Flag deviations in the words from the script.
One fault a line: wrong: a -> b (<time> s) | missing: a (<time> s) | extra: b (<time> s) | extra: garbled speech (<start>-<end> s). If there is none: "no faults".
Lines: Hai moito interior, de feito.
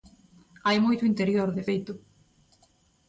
no faults